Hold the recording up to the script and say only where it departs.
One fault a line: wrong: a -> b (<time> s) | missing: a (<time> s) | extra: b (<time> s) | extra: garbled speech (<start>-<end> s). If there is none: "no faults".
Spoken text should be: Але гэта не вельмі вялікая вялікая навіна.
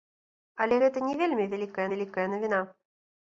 no faults